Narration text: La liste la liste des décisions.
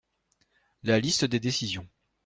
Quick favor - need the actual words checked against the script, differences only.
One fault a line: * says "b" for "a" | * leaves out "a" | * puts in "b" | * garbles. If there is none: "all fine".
* leaves out "la liste"